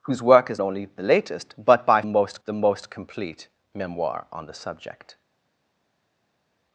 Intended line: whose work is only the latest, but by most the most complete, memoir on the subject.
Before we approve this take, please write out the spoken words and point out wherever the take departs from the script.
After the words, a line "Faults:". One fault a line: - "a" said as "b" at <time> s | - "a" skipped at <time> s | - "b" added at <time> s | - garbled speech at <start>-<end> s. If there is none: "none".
whose work is only the latest, but by most the most complete, memoir on the subject.
Faults:
none